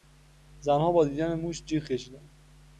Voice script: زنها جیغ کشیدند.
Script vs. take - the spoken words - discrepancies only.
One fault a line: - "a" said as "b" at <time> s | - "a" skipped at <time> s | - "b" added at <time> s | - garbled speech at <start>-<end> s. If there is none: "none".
- "با دیدن موش" added at 0.9 s